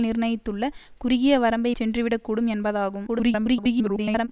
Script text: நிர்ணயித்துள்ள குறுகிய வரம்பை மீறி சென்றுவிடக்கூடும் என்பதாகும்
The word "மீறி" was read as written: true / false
false